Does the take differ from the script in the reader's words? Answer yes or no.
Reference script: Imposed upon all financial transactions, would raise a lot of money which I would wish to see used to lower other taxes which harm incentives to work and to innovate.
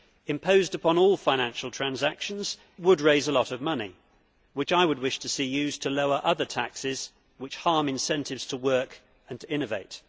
no